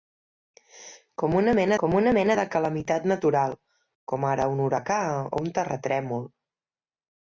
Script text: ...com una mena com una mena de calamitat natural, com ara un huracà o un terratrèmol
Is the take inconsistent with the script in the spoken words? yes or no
no